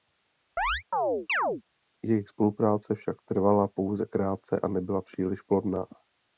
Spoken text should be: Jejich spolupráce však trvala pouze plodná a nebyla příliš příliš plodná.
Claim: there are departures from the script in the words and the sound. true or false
true